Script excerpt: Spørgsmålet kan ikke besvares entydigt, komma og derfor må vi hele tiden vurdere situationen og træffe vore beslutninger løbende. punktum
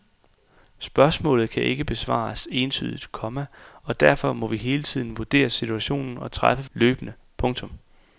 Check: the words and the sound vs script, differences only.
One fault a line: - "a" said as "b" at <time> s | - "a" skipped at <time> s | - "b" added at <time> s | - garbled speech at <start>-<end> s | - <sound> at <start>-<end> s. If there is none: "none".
- "vore beslutninger" skipped at 6.7 s